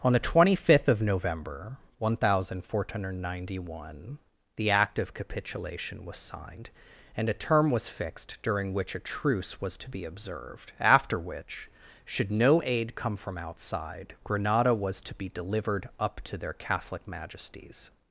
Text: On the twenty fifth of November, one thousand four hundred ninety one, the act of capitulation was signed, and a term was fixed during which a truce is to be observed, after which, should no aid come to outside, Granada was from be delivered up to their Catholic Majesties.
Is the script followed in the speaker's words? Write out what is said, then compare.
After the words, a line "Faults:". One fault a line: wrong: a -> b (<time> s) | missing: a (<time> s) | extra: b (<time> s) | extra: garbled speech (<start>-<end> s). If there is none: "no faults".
On the twenty fifth of November, one thousand four hundred ninety one, the act of capitulation was signed, and a term was fixed during which a truce was to be observed, after which, should no aid come from outside, Granada was to be delivered up to their Catholic Majesties.
Faults:
wrong: is -> was (9.6 s)
wrong: to -> from (13.2 s)
wrong: from -> to (15.0 s)